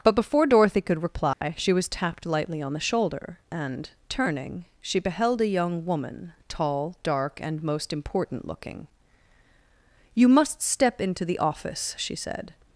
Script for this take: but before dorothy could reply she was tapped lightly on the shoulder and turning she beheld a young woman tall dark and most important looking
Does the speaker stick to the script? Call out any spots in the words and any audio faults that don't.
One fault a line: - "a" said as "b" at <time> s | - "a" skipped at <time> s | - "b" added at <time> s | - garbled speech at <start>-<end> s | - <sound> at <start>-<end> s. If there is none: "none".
- dropout at 1.3-1.4 s
- "you must step into the office she said" added at 10.1 s